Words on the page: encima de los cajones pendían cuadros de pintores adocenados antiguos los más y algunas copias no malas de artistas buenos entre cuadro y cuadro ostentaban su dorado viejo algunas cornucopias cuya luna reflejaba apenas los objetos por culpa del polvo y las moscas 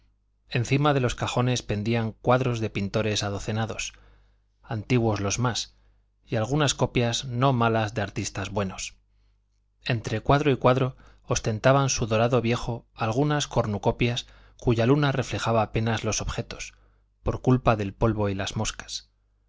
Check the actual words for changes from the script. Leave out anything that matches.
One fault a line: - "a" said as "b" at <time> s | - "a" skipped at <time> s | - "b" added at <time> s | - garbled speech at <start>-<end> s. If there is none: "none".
none